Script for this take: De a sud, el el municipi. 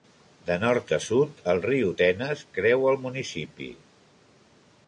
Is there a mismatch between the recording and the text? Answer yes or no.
yes